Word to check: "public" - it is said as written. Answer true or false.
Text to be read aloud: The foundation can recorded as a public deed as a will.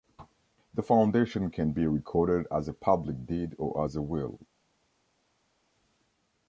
true